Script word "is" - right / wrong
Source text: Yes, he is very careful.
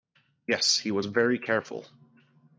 wrong